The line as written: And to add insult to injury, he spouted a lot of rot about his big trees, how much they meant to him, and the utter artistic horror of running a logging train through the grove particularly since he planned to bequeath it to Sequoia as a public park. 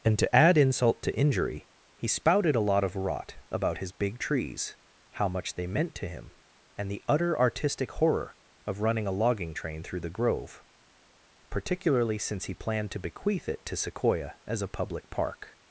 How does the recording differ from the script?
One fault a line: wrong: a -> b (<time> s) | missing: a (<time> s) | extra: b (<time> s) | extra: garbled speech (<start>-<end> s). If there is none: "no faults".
no faults